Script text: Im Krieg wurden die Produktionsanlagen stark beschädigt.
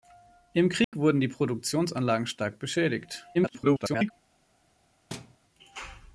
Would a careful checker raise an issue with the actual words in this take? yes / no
yes